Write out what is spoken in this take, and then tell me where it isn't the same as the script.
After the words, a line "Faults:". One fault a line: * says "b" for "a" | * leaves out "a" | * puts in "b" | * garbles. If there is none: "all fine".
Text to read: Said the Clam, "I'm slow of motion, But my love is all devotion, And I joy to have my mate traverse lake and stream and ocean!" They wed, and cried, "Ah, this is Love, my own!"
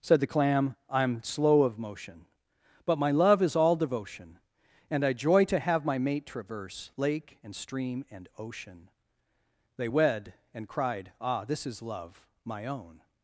Said the Clam, "I'm slow of motion, But my love is all devotion, And I joy to have my mate traverse lake and stream and ocean!" They wed, and cried, "Ah, this is Love, my own!"
Faults:
all fine